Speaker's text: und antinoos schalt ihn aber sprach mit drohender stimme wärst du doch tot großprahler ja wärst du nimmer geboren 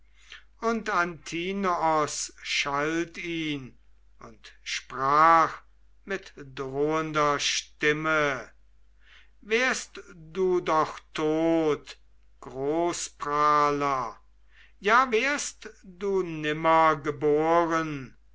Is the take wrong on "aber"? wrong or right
wrong